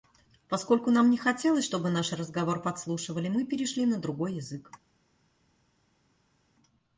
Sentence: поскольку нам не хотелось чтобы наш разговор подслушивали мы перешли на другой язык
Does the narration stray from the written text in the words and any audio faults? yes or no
no